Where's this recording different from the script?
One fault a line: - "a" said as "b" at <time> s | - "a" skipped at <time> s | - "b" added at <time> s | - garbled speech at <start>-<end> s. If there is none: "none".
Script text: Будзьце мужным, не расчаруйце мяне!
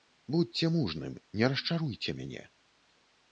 none